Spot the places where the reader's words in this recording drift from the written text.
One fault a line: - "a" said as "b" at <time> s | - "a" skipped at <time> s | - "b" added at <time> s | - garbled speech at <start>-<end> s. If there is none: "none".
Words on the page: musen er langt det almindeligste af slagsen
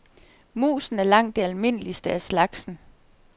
none